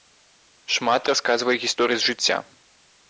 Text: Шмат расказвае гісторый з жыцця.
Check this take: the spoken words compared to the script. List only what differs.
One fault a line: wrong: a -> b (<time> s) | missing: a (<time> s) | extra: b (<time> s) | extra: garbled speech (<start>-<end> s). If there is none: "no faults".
no faults